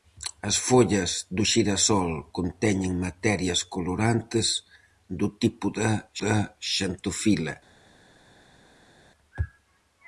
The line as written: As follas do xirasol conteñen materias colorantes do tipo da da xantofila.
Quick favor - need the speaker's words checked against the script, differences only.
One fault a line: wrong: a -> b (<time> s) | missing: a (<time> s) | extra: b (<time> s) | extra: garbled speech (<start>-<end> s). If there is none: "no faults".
no faults